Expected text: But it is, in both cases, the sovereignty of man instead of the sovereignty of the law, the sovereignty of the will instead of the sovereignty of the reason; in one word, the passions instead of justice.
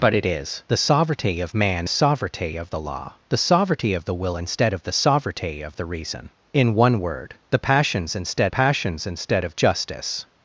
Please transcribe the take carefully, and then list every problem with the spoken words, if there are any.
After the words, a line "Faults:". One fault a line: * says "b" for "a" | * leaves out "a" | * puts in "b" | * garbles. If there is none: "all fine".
But it is, the sovereignty of man sovereignty of the law, the sovereignty of the will instead of the sovereignty of the reason; in one word, the passions instead passions instead of justice.
Faults:
* leaves out "in both cases"
* leaves out "instead of the"
* puts in "passions instead"